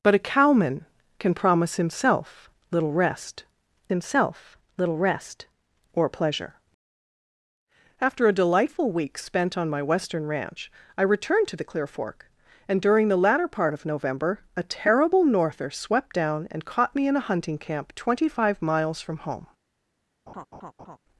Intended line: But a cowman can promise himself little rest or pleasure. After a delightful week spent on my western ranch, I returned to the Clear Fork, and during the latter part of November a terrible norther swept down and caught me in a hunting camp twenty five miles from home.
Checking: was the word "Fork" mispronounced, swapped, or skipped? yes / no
no